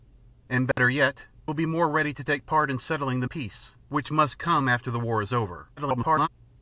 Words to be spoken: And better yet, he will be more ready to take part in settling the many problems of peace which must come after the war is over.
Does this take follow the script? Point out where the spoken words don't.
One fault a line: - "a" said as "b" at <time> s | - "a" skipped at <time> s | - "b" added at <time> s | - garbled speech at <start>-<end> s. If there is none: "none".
- "he" skipped at 1.3 s
- "many problems of" skipped at 3.3 s
- garbled speech at 5.8-6.3 s